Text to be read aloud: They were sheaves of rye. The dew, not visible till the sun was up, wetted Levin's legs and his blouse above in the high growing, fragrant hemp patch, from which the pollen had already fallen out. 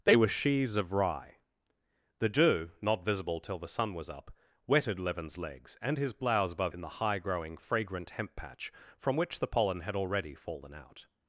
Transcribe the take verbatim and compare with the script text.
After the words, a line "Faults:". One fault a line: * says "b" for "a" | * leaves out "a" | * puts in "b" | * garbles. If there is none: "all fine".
They were sheaves of rye. The dew, not visible till the sun was up, wetted Levin's legs and his blouse above in the high growing, fragrant hemp patch, from which the pollen had already fallen out.
Faults:
all fine